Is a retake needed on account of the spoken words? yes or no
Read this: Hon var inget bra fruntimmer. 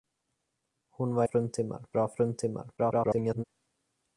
yes